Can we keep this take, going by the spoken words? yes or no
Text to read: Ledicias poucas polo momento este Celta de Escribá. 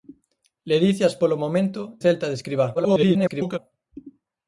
no